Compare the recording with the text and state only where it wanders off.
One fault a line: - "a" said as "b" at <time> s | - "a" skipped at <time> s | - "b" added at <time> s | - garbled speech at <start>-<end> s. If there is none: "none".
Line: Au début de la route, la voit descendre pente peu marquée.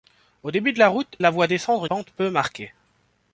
none